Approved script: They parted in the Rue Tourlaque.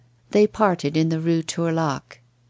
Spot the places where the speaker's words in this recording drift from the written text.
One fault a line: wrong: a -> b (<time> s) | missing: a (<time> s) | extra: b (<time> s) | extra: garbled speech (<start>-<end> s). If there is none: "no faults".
no faults